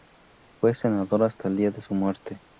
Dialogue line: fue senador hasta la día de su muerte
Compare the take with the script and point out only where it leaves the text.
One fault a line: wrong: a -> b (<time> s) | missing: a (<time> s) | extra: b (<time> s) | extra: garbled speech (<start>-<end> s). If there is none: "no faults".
wrong: la -> el (1.5 s)